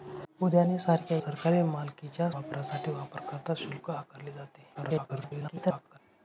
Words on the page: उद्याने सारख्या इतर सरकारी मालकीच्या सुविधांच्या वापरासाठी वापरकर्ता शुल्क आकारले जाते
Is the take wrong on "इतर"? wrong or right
wrong